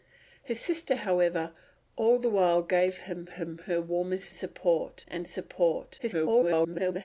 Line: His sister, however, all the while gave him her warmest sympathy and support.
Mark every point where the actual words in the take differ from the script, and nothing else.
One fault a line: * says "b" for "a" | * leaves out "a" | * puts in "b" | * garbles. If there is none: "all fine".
* puts in "him"
* says "support" for "sympathy"
* garbles